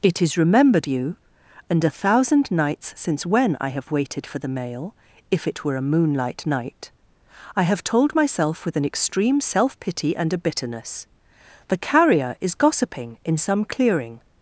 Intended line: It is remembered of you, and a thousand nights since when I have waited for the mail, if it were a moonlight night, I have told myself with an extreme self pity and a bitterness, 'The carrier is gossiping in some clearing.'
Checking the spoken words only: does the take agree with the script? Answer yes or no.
no